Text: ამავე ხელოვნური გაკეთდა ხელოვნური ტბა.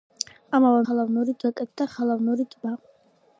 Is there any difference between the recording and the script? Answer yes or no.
no